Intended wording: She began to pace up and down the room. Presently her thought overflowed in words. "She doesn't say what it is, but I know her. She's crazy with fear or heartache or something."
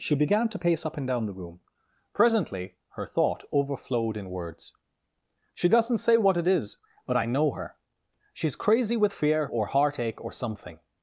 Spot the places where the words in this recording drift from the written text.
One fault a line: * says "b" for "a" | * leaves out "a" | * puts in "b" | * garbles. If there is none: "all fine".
all fine